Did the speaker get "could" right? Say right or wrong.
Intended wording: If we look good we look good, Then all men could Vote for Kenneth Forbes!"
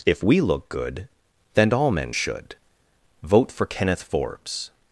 wrong